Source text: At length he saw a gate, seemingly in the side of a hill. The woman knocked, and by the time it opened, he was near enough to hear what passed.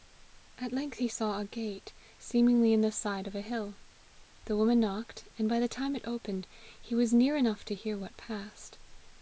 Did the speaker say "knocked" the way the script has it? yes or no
yes